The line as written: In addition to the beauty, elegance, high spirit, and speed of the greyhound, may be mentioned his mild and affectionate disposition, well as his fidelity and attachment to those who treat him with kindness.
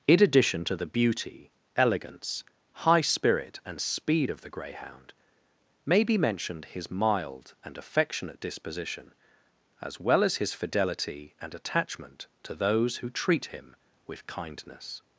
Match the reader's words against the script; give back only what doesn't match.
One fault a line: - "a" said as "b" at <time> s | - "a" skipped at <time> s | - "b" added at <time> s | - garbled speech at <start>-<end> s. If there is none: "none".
- "as" added at 9.8 s